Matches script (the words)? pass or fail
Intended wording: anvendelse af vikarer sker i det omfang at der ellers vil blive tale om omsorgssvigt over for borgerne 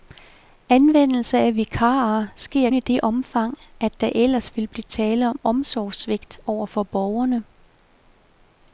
pass